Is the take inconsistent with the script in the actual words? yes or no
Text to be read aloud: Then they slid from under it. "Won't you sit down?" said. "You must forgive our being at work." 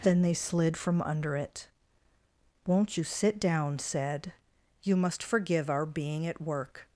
no